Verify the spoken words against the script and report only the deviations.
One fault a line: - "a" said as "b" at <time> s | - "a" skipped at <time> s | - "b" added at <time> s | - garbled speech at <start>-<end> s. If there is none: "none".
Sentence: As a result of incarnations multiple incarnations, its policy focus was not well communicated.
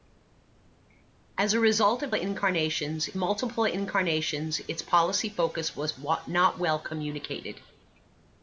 none